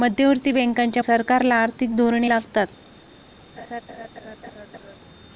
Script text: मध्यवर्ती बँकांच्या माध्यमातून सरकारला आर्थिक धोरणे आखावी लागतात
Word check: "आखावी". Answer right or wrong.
wrong